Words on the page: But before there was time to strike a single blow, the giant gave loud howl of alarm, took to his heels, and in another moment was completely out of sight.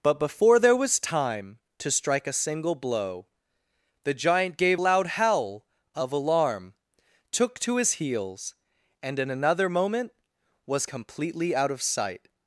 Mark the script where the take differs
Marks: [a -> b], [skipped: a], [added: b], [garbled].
But before there was time to strike a single blow, the giant gave loud howl of alarm, took to his heels, and in another moment was completely out of sight.